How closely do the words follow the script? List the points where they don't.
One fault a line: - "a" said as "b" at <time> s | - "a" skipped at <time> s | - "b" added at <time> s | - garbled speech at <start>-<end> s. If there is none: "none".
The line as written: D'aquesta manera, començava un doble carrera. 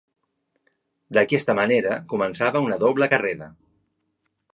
- "un" said as "una" at 2.7 s